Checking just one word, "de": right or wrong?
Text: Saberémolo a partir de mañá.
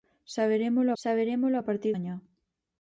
wrong